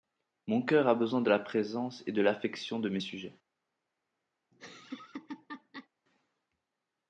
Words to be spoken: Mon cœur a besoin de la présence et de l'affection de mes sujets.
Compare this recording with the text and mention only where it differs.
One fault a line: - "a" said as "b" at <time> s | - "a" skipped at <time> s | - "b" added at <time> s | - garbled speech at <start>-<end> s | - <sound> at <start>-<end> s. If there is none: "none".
- laugh at 4.5-5.9 s